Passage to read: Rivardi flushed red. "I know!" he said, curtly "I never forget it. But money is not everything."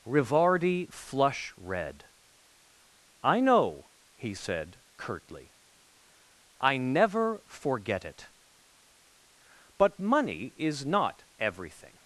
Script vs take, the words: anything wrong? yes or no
yes